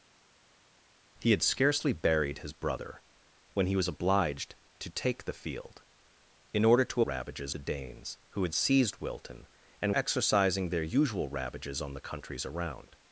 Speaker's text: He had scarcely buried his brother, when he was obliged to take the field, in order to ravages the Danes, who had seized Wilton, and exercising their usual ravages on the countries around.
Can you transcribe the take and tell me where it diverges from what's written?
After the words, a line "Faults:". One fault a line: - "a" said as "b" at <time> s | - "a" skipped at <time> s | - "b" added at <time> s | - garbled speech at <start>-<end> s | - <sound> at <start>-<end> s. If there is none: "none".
He had scarcely buried his brother, when he was obliged to take the field, in order to ravages the Danes, who had seized Wilton, and exercising their usual ravages on the countries around.
Faults:
none